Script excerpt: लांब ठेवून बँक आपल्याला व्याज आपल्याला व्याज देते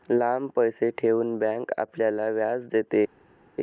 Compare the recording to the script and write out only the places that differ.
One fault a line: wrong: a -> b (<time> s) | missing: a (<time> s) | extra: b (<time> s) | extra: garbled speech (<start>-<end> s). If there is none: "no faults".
extra: पैसे (0.5 s)
missing: आपल्याला व्याज (2.7 s)